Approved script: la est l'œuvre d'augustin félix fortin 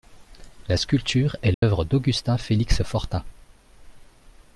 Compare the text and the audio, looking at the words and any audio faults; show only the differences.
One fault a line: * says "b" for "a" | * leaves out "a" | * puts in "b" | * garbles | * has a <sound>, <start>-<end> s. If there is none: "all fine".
* puts in "sculpture"
* has a dropout, 1.5-1.6 s